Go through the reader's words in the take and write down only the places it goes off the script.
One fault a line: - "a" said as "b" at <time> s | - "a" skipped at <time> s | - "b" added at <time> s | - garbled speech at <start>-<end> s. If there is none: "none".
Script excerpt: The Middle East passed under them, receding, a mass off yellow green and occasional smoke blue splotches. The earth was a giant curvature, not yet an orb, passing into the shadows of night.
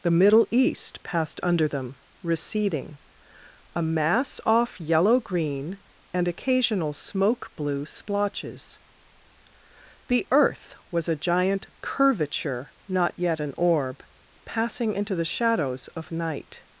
none